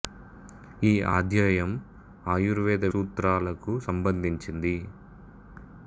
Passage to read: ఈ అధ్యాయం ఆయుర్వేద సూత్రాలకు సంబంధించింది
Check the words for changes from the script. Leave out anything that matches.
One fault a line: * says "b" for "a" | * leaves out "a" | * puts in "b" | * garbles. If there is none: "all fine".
all fine